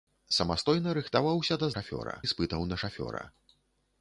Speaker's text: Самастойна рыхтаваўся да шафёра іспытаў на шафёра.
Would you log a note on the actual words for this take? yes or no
no